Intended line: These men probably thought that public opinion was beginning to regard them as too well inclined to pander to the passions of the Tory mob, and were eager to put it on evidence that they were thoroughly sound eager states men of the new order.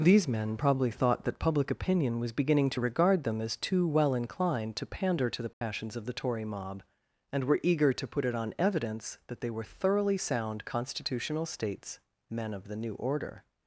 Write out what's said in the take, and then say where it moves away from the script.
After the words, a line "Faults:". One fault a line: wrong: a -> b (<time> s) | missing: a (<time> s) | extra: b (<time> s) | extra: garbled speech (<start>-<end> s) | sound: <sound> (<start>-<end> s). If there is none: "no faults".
These men probably thought that public opinion was beginning to regard them as too well inclined to pander to the passions of the Tory mob, and were eager to put it on evidence that they were thoroughly sound constitutional states men of the new order.
Faults:
sound: dropout (5.5-5.6 s)
wrong: eager -> constitutional (10.7 s)